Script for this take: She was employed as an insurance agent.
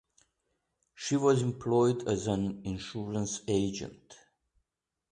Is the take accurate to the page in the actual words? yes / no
yes